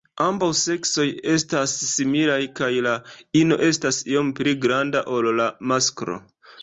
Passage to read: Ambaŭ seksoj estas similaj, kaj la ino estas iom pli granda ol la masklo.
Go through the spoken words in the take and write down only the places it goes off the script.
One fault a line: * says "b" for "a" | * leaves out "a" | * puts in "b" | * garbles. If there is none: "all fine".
all fine